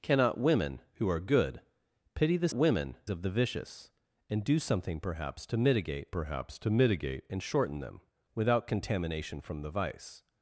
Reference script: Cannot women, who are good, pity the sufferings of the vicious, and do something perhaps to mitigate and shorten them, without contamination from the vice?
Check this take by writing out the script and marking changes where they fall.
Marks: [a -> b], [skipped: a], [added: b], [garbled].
Cannot women, who are good, pity the [sufferings -> women] of the vicious, and do something perhaps to mitigate [added: perhaps to mitigate] and shorten them, without contamination from the vice?